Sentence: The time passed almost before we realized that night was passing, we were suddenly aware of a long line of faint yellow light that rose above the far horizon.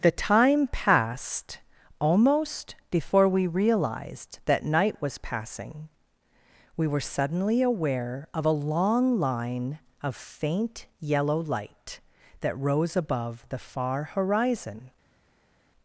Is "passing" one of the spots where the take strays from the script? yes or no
no